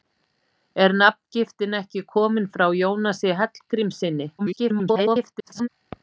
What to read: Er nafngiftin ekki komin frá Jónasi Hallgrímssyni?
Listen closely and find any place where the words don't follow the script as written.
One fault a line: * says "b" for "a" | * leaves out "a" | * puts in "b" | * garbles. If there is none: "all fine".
* garbles